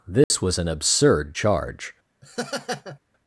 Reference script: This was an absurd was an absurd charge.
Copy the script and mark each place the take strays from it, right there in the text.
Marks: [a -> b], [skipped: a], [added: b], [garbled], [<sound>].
This [dropout] was an absurd [skipped: was an absurd] charge. [laugh]